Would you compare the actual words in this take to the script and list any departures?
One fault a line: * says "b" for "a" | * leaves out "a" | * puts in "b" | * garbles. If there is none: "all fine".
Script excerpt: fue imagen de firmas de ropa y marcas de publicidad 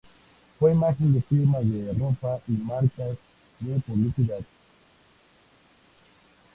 all fine